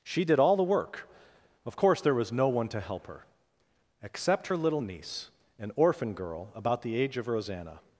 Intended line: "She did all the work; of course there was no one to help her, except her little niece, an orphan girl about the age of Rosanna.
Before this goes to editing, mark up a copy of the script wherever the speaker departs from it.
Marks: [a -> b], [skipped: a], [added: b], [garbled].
"She did all the work; of course there was no one to help her, except her little niece, an orphan girl about the age of Rosanna.